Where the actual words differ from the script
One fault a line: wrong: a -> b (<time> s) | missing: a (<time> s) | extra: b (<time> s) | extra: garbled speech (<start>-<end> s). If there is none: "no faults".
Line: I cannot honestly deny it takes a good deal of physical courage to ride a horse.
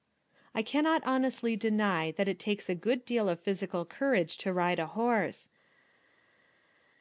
extra: that (2.1 s)